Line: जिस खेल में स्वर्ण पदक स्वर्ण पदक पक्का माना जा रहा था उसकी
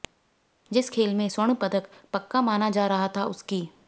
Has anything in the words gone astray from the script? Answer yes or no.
yes